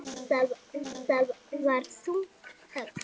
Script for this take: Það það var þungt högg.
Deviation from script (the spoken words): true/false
false